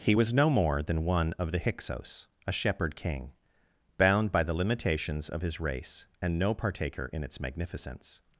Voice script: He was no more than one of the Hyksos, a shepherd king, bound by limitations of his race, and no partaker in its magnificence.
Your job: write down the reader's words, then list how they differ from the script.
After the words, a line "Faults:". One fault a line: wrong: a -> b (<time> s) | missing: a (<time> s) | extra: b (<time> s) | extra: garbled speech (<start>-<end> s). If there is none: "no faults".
He was no more than one of the Hyksos, a shepherd king, bound by the limitations of his race, and no partaker in its magnificence.
Faults:
extra: the (4.4 s)